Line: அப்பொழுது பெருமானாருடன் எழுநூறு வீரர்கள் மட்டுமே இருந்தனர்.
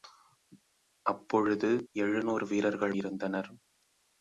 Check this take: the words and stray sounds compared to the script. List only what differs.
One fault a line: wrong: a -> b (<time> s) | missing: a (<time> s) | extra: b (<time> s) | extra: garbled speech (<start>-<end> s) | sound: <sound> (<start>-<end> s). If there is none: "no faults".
missing: பெருமானாருடன் (1.7 s)
missing: மட்டுமே (2.9 s)